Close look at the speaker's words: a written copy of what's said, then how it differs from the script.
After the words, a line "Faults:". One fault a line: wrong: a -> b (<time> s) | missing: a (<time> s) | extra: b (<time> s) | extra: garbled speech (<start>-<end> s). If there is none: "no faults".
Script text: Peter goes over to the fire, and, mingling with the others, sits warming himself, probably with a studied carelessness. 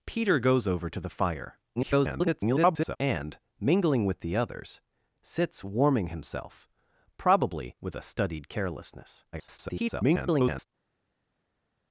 Peter goes over to the fire, [garbled] and, mingling with the others, sits warming himself, probably with a studied carelessness. [garbled]
Faults:
extra: garbled speech (1.8-3.0 s)
extra: garbled speech (9.3-10.7 s)